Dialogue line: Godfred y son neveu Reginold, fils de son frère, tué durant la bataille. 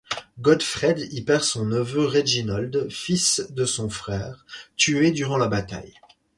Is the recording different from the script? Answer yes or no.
yes